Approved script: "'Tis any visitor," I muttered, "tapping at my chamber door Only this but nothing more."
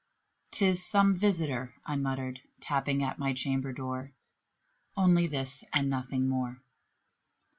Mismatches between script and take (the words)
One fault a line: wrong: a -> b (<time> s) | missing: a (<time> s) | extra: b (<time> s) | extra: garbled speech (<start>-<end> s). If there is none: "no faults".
wrong: any -> some (0.8 s)
wrong: but -> and (5.7 s)